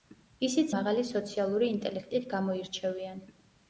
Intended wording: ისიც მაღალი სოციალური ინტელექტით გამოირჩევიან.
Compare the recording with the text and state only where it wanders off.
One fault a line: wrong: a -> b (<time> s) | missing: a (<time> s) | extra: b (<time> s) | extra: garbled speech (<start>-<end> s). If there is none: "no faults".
no faults